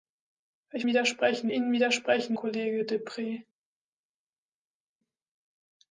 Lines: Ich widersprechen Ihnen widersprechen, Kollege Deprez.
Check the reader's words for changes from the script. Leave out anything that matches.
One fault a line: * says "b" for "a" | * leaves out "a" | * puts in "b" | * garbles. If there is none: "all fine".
all fine